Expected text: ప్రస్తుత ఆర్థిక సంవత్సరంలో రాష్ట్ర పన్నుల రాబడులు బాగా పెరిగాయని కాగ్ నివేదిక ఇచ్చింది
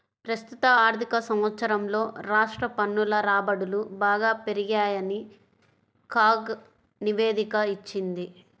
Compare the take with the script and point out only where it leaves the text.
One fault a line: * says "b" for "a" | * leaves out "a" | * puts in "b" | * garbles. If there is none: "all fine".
all fine